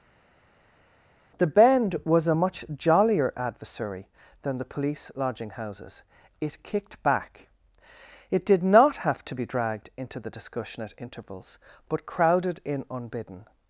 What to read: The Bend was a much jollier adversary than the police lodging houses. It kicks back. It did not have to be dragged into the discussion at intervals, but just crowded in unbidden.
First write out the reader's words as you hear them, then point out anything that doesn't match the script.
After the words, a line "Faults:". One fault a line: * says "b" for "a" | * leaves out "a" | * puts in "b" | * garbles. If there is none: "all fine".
The Bend was a much jollier adversary than the police lodging houses. It kicked back. It did not have to be dragged into the discussion at intervals, but crowded in unbidden.
Faults:
* says "kicked" for "kicks"
* leaves out "just"